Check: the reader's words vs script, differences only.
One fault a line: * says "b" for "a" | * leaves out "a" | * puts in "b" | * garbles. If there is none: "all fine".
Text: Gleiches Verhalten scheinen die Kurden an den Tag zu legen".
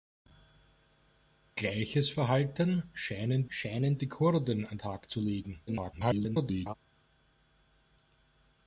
* puts in "scheinen"
* leaves out "den"
* garbles